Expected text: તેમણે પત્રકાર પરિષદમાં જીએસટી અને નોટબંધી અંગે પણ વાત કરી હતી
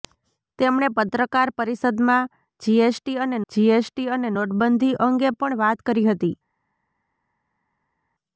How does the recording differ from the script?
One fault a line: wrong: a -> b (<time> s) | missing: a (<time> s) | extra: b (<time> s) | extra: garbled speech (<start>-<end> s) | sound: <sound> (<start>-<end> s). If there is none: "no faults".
extra: જીએસટી અને (3.5 s)